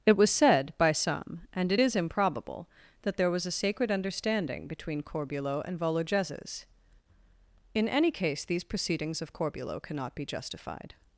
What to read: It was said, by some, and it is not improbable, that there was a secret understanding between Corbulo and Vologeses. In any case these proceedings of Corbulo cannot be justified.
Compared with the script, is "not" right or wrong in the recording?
wrong